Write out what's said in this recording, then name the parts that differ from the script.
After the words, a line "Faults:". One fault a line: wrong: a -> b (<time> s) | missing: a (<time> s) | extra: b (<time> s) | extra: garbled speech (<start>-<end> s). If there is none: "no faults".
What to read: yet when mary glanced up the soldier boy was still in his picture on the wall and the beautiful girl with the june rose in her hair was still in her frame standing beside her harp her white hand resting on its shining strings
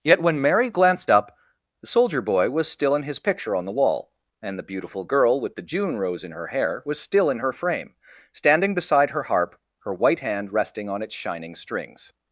yet when mary glanced up the soldier boy was still in his picture on the wall and the beautiful girl with the june rose in her hair was still in her frame standing beside her harp her white hand resting on its shining strings
Faults:
no faults